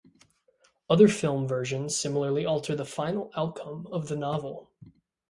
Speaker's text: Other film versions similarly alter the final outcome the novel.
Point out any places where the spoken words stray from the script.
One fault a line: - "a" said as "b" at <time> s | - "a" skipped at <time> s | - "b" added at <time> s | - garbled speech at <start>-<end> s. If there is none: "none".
- "of" added at 3.9 s